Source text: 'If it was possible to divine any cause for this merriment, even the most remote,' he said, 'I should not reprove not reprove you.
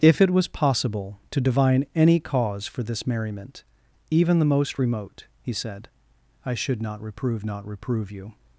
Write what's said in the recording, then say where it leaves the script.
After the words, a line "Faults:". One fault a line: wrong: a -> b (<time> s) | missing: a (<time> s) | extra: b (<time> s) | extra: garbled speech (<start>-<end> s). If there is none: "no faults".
'If it was possible to divine any cause for this merriment, even the most remote,' he said, 'I should not reprove not reprove you.
Faults:
no faults